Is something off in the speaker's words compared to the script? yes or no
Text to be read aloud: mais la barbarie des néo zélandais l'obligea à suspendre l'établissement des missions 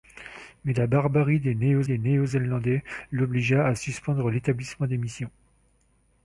yes